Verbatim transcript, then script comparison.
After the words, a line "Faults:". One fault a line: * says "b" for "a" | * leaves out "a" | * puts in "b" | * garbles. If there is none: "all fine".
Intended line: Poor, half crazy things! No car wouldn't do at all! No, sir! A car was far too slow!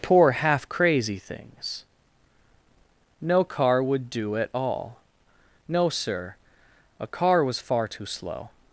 Poor, half crazy things! No car would do at all! No, sir! A car was far too slow!
Faults:
* says "would" for "wouldn't"